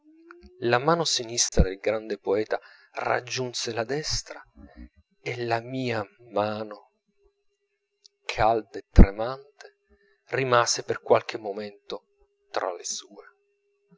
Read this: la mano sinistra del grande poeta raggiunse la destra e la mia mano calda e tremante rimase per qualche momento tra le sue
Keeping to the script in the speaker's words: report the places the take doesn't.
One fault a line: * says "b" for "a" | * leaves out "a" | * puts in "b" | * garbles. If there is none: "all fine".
all fine